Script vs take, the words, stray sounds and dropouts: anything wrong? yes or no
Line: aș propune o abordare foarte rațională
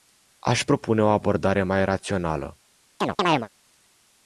yes